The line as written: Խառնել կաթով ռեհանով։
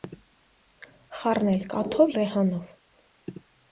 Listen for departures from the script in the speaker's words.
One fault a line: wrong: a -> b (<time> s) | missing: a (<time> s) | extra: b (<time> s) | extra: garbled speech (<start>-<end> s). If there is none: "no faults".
no faults